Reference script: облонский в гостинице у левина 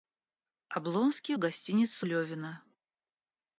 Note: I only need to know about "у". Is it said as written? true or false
false